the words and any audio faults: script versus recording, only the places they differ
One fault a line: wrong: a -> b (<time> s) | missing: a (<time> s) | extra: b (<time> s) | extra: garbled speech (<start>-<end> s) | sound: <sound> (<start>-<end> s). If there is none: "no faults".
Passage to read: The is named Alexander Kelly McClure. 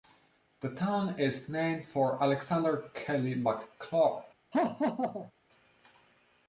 extra: town (0.7 s)
extra: for (1.9 s)
sound: laugh (4.5-5.3 s)